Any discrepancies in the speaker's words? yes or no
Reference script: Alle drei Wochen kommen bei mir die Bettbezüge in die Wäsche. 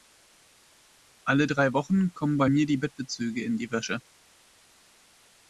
no